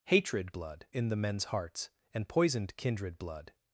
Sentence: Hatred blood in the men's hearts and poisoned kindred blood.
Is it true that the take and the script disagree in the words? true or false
false